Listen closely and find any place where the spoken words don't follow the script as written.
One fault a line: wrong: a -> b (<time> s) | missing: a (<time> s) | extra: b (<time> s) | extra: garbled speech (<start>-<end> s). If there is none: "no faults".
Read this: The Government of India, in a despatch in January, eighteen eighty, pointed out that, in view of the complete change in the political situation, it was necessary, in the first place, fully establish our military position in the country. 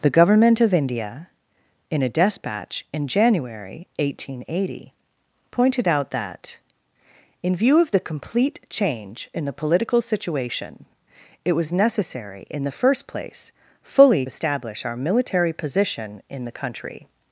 no faults